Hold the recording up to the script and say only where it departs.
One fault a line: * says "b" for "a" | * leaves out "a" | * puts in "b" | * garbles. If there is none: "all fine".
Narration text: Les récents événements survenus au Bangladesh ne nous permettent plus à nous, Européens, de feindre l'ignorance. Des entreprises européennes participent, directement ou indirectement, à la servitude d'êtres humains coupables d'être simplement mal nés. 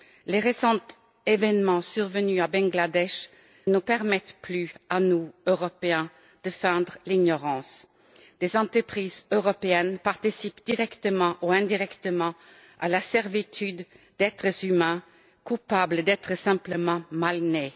* leaves out "ne"